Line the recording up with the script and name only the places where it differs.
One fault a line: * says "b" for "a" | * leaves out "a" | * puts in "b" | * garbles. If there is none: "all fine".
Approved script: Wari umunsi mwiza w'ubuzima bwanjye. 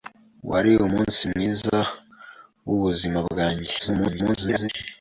* garbles